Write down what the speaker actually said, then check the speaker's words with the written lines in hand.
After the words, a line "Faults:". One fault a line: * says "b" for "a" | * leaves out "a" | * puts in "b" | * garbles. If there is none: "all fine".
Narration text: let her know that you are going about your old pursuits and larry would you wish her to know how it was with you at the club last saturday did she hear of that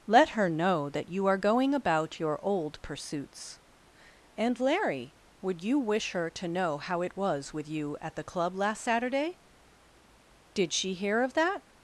let her know that you are going about your old pursuits and larry would you wish her to know how it was with you at the club last saturday did she hear of that
Faults:
all fine